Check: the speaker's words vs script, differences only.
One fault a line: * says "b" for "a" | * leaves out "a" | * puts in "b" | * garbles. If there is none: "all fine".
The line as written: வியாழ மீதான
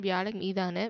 all fine